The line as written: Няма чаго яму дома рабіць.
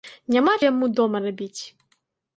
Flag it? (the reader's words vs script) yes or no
yes